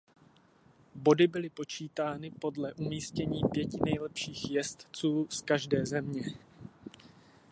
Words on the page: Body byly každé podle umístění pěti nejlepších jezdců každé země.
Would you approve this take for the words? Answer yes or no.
no